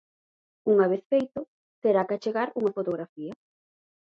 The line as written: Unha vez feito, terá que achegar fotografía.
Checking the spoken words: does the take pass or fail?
fail